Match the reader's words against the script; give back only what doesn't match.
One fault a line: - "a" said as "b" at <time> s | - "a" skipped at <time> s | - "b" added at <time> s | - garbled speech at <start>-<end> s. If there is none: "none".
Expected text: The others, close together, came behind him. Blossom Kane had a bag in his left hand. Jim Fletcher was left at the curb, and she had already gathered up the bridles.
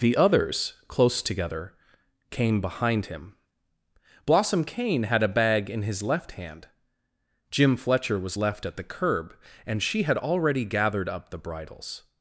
none